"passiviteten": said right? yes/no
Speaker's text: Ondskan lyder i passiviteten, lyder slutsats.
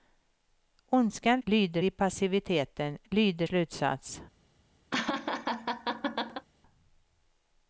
yes